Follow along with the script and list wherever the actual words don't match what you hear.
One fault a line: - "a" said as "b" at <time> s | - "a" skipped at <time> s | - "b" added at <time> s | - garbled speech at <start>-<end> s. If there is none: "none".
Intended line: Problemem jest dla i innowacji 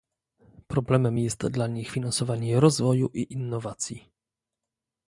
- "nich finansowanie rozwoju" added at 1.7 s